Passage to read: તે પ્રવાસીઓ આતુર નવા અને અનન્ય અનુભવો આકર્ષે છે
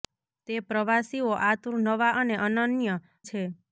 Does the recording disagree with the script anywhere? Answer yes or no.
yes